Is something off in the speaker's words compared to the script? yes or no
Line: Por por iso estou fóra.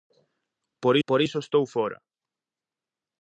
no